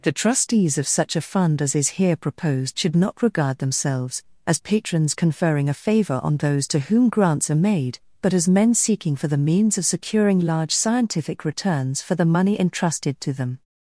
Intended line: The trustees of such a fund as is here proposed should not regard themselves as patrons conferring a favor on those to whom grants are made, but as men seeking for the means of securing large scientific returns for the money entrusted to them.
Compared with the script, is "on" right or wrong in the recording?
right